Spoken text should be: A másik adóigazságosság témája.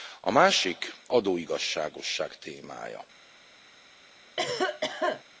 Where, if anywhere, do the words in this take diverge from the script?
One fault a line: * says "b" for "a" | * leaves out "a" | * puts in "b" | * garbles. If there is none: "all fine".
all fine